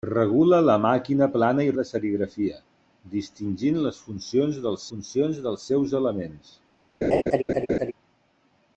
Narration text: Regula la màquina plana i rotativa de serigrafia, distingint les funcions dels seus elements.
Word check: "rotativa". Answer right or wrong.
wrong